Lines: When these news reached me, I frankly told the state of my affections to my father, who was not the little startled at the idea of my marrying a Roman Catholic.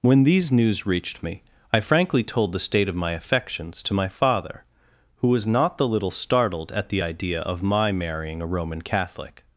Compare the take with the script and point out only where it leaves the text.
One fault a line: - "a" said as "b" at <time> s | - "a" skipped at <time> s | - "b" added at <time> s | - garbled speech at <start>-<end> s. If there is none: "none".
none